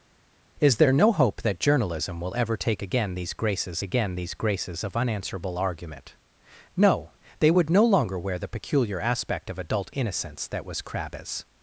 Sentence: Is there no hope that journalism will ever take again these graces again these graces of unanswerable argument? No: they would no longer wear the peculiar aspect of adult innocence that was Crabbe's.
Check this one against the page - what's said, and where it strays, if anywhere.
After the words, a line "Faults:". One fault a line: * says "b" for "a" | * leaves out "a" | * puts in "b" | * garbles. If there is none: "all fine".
Is there no hope that journalism will ever take again these graces again these graces of unanswerable argument? No: they would no longer wear the peculiar aspect of adult innocence that was Crabbe's.
Faults:
all fine